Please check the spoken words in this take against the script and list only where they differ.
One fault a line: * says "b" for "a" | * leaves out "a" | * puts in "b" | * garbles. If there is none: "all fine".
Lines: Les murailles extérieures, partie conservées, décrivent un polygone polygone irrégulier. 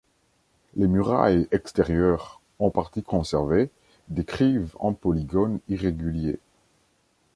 * puts in "en"
* leaves out "polygone"